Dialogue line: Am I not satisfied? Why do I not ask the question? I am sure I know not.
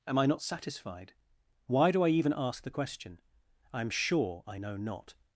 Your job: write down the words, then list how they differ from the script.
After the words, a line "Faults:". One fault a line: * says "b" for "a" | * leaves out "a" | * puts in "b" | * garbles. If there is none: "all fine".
Am I not satisfied? Why do I even ask the question? I am sure I know not.
Faults:
* says "even" for "not"